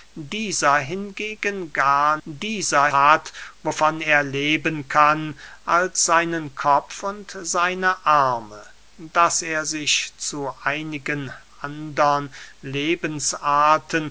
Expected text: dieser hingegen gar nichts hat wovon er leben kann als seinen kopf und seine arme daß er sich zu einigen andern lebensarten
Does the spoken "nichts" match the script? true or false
false